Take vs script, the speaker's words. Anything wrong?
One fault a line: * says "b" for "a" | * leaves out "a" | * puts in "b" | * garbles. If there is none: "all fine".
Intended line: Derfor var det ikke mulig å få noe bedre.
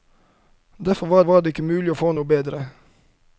* puts in "var"